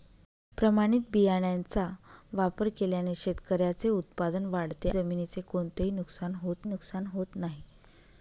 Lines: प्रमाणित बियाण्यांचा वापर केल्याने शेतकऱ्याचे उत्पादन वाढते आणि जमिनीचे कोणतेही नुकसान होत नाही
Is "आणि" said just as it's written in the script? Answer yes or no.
no